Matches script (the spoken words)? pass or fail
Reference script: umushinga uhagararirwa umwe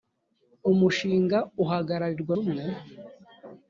pass